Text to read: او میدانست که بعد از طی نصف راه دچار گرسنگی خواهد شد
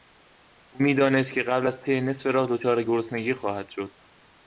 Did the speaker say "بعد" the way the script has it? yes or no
no